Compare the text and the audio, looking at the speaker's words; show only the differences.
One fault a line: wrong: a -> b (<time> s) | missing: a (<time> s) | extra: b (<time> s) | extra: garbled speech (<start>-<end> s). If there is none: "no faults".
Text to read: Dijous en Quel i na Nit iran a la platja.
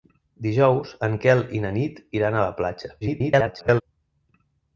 extra: garbled speech (3.0-3.8 s)